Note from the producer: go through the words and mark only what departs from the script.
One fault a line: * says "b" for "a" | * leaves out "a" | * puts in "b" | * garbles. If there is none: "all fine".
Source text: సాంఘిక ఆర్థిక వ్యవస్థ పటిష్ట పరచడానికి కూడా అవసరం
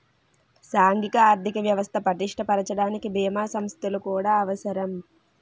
* puts in "బీమా సంస్థలు"